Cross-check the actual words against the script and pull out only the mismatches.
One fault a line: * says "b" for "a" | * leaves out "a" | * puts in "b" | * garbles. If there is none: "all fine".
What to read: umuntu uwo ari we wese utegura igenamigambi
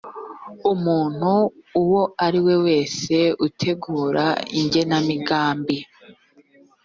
all fine